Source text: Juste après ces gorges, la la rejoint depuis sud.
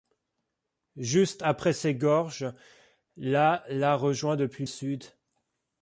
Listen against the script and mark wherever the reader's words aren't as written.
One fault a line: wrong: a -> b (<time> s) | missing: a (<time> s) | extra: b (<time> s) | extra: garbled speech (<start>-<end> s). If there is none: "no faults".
no faults